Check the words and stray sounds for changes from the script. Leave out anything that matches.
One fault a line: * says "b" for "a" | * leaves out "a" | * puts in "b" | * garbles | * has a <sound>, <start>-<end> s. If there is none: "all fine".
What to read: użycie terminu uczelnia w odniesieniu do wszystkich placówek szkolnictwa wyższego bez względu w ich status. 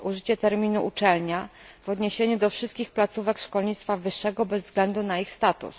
* says "na" for "w"